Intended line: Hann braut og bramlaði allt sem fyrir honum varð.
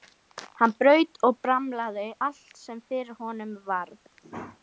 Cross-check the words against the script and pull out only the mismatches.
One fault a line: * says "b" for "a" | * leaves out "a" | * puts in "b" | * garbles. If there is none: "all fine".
all fine